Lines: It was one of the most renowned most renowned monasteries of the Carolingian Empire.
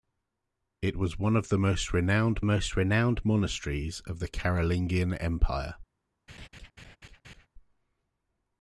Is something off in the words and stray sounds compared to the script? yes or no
yes